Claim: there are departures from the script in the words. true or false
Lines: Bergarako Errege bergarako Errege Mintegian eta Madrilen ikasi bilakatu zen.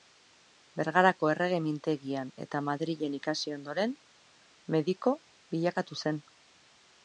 true